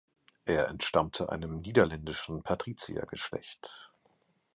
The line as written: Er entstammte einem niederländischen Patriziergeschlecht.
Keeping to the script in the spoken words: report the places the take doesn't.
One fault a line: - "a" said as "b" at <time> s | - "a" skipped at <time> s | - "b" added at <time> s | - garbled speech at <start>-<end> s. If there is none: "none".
none